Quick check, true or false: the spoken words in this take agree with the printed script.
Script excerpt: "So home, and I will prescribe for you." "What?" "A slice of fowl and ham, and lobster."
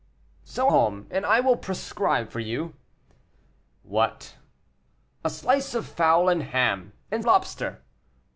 true